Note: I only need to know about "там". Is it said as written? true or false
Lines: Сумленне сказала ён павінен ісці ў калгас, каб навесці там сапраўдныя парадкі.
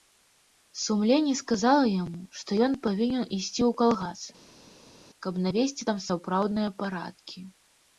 true